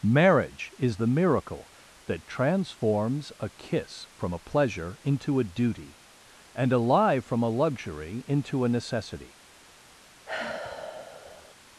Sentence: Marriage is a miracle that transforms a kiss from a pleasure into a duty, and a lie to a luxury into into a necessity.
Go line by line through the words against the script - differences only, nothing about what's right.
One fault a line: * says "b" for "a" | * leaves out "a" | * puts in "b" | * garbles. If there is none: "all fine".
* says "the" for "a"
* says "from" for "to"
* leaves out "into"